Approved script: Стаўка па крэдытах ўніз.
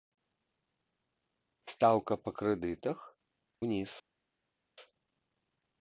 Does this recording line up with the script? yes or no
yes